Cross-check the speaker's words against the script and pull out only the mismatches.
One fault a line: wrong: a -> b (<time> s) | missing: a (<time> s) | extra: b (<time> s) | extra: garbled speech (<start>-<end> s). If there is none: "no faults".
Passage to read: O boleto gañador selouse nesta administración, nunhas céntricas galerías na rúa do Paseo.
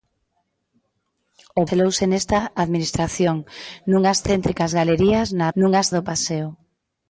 missing: boleto gañador (1.6 s)
wrong: rúa -> nunhas (5.6 s)